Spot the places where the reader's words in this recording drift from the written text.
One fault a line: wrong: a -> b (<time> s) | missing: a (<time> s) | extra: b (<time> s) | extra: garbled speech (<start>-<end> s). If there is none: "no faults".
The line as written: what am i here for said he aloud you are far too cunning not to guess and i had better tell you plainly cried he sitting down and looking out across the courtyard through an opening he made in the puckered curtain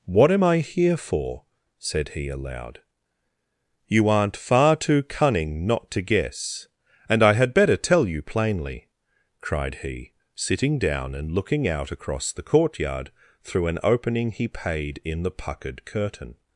wrong: are -> aren't (4.1 s)
wrong: made -> paid (14.5 s)